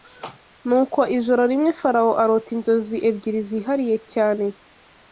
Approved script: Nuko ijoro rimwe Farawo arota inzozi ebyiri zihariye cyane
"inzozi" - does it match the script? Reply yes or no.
yes